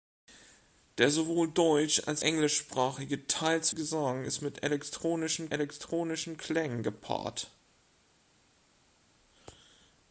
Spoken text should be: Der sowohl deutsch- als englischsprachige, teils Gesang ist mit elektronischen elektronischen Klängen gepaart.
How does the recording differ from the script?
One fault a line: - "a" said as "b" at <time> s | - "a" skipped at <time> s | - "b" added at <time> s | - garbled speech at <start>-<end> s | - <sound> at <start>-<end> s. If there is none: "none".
none